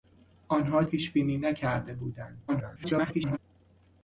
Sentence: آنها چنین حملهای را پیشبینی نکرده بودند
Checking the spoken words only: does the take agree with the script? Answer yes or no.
no